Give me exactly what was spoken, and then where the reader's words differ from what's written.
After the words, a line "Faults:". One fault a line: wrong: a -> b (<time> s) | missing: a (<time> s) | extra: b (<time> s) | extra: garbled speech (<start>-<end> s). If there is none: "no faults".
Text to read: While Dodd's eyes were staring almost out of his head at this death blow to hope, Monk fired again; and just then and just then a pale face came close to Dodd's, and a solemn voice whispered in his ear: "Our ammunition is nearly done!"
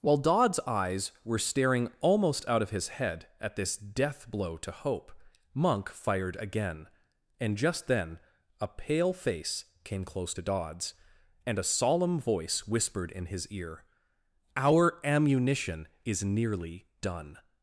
While Dodd's eyes were staring almost out of his head at this death blow to hope, Monk fired again; and just then a pale face came close to Dodd's, and a solemn voice whispered in his ear: "Our ammunition is nearly done!"
Faults:
missing: and just then (8.2 s)